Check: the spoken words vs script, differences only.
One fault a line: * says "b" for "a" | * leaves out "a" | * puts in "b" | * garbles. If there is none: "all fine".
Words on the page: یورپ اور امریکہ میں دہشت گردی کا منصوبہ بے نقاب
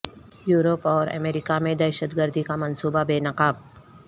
all fine